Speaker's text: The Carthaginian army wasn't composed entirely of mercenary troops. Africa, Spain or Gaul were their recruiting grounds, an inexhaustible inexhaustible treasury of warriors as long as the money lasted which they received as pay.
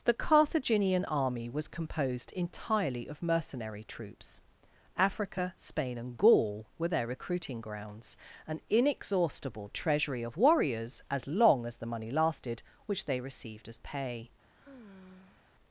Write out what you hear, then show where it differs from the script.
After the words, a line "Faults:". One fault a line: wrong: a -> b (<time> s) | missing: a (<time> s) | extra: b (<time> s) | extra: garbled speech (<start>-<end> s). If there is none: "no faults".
The Carthaginian army was composed entirely of mercenary troops. Africa, Spain and Gaul were their recruiting grounds, an inexhaustible treasury of warriors as long as the money lasted which they received as pay.
Faults:
wrong: wasn't -> was (1.5 s)
wrong: or -> and (6.0 s)
missing: inexhaustible (9.7 s)